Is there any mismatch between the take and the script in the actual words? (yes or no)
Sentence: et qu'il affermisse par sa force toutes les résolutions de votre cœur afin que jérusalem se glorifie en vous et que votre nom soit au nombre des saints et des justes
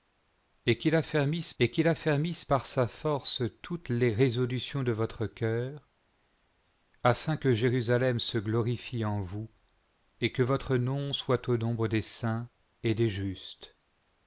yes